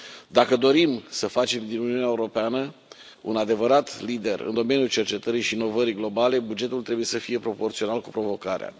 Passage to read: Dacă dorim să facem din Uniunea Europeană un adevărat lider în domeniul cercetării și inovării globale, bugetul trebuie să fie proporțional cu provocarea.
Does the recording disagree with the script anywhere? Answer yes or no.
no